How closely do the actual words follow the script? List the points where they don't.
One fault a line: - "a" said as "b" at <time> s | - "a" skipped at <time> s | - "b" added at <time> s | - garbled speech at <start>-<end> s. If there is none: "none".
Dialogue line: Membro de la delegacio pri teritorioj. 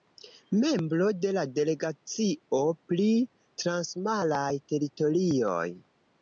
- "transmaraj" added at 3.6 s